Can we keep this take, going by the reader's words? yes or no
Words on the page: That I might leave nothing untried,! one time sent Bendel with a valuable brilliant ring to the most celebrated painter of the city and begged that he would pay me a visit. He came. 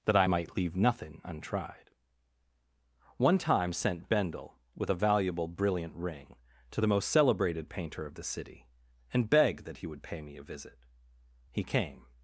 yes